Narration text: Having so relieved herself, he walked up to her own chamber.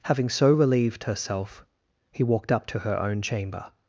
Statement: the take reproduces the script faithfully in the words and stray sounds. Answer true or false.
true